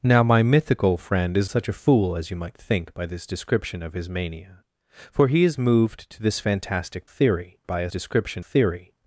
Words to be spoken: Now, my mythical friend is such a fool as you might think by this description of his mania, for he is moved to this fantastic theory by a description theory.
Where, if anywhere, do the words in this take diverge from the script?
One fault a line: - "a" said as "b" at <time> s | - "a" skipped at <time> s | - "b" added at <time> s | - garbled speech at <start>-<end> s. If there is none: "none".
none